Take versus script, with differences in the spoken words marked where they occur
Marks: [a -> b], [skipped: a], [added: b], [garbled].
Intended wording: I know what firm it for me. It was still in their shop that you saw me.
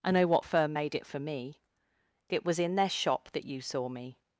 I know what firm [added: made] it for me. It was [skipped: still] in their shop that you saw me.